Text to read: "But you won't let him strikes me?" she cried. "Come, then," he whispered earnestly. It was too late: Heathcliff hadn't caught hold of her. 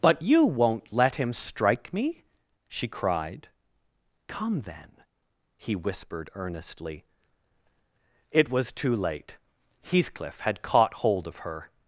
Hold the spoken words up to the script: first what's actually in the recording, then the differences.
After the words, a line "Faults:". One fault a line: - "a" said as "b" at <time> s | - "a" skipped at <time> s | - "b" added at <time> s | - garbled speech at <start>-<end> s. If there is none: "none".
"But you won't let him strike me?" she cried. "Come, then," he whispered earnestly. It was too late: Heathcliff had caught hold of her.
Faults:
- "strikes" said as "strike" at 1.3 s
- "hadn't" said as "had" at 10.4 s